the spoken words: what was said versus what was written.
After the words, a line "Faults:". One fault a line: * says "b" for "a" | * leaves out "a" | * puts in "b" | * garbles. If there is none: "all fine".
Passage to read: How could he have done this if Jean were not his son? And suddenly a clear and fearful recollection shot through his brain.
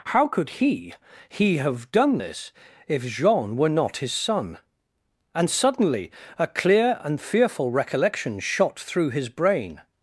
How could he he have done this if Jean were not his son? And suddenly a clear and fearful recollection shot through his brain.
Faults:
* puts in "he"